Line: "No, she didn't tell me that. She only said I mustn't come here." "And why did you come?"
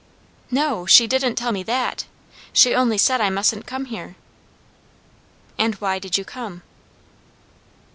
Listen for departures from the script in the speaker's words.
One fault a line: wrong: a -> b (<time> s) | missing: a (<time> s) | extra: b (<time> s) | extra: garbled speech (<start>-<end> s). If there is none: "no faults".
no faults